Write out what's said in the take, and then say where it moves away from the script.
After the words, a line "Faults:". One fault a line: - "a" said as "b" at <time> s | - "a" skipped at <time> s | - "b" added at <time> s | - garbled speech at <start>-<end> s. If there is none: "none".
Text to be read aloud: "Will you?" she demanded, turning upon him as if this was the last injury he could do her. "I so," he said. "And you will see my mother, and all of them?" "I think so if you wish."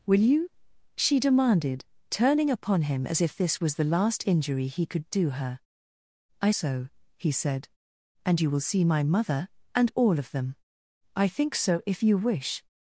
"Will you?" she demanded, turning upon him as if this was the last injury he could do her. "I so," he said. "And you will see my mother, and all of them?" "I think so if you wish."
Faults:
none